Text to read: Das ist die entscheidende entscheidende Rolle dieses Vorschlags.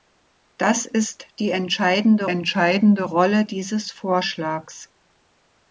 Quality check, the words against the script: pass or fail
pass